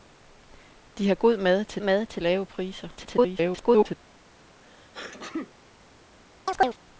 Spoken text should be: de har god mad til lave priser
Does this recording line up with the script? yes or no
no